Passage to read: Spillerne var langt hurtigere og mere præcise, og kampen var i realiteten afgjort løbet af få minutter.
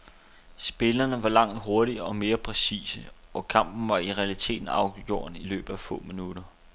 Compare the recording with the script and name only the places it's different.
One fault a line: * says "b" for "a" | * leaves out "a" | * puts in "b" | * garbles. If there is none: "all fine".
* puts in "i"